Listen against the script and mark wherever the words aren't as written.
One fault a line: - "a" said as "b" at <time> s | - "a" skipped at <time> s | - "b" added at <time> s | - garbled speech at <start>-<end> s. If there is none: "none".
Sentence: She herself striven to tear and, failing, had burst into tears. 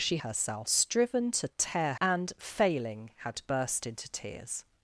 none